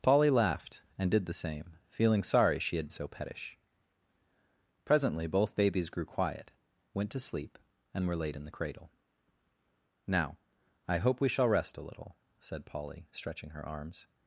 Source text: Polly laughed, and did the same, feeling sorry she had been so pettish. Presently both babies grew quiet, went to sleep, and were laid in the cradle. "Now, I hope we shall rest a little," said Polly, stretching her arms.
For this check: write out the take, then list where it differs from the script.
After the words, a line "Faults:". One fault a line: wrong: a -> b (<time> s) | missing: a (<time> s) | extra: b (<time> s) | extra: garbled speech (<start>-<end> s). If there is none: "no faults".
Polly laughed, and did the same, feeling sorry she had so pettish. Presently both babies grew quiet, went to sleep, and were laid in the cradle. "Now, I hope we shall rest a little," said Polly, stretching her arms.
Faults:
missing: been (2.9 s)